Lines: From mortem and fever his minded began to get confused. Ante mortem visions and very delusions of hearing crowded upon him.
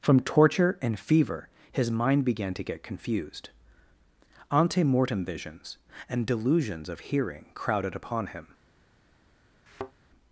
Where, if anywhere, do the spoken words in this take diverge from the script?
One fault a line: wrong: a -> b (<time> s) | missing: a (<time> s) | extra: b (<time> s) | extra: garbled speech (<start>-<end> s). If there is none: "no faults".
wrong: mortem -> torture (0.2 s)
wrong: minded -> mind (1.9 s)
missing: very (6.2 s)